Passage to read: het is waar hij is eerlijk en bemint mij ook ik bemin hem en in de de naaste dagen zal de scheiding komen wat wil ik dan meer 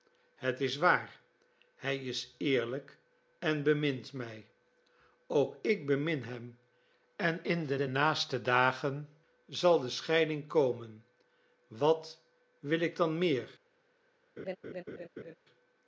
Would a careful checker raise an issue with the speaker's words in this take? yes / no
no